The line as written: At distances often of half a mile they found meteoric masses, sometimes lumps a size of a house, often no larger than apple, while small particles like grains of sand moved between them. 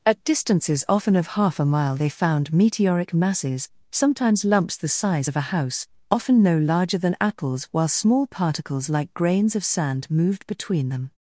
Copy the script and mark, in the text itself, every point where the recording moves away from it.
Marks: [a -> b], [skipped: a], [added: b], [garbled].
At distances often of half a mile they found meteoric masses, sometimes lumps [a -> the] size of a house, often no larger than [apple, -> apples] while small particles like grains of sand moved between them.